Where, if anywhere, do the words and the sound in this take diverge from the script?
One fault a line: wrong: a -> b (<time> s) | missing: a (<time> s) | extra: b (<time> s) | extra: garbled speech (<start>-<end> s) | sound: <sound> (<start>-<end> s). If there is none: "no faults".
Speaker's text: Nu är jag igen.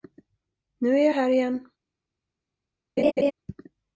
extra: här (1.1 s)
sound: laugh (3.0-3.3 s)